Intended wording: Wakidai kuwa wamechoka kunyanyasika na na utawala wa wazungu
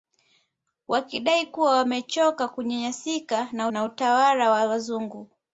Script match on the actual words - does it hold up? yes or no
yes